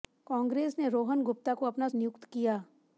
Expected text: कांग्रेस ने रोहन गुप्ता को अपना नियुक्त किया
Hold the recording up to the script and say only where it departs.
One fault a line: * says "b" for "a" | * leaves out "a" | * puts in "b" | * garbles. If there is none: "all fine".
all fine